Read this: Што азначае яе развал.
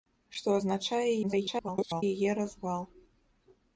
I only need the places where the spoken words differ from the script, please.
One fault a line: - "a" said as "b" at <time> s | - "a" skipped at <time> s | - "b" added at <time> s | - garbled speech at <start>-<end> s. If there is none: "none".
- garbled speech at 1.2-2.0 s